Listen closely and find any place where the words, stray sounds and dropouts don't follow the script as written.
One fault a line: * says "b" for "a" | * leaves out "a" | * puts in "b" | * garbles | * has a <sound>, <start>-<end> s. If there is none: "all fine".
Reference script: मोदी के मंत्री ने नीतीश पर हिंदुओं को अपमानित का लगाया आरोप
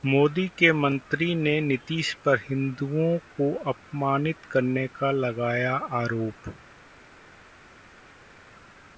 * puts in "करने"